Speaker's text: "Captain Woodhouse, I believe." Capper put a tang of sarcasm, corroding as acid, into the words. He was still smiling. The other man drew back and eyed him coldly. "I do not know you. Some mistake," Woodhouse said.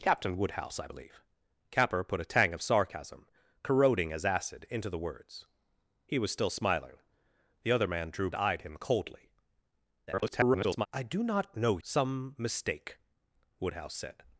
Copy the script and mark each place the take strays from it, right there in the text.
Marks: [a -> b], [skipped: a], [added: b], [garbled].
"Captain Woodhouse, I believe." Capper put a tang of sarcasm, corroding as acid, into the words. He was still smiling. The other man drew [skipped: back and] eyed him coldly. [garbled] "I do not know [skipped: you.] Some mistake," Woodhouse said.